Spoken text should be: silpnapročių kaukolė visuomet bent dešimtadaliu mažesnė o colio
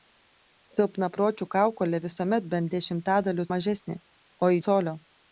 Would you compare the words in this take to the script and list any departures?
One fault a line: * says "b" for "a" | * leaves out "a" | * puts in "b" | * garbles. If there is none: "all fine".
all fine